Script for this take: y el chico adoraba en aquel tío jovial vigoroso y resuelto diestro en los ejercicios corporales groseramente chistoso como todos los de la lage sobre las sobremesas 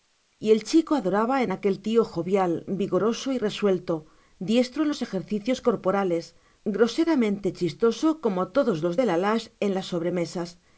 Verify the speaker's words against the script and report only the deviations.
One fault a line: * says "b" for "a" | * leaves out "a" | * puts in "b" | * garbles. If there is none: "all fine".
* says "en" for "sobre"